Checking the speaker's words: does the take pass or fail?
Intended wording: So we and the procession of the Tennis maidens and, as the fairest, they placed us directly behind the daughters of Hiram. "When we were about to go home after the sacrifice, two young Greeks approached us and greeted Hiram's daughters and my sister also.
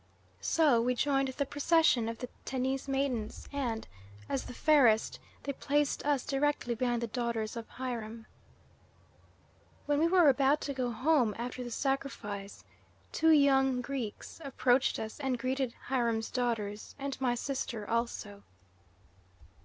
fail